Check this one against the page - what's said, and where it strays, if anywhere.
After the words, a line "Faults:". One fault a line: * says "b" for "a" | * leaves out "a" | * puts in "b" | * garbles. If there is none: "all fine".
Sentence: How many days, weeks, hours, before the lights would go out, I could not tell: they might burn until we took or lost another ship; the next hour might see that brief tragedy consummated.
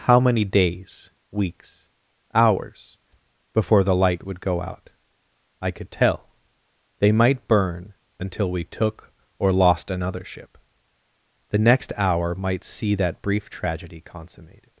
How many days, weeks, hours, before the light would go out, I could tell: they might burn until we took or lost another ship; the next hour might see that brief tragedy consummated.
Faults:
* says "light" for "lights"
* leaves out "not"